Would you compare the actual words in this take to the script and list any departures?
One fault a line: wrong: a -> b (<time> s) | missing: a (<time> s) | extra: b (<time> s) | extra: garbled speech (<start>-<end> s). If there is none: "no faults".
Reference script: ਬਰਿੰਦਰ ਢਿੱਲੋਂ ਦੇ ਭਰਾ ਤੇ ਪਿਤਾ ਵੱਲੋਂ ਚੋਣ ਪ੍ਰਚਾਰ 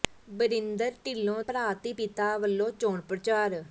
missing: ਦੇ (1.4 s)